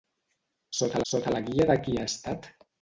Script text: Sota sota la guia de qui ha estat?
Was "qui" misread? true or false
false